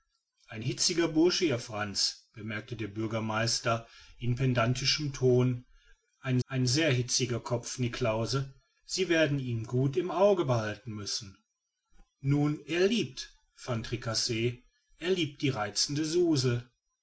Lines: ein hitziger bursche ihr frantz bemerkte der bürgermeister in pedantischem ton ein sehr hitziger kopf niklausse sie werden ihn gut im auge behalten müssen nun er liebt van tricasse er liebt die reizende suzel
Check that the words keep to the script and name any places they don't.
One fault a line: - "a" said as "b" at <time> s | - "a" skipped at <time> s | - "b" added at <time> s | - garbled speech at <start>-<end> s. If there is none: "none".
- "ein" added at 6.5 s